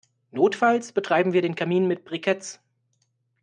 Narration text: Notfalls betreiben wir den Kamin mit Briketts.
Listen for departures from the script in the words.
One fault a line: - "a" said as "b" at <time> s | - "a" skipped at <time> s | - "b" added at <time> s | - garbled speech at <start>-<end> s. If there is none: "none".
none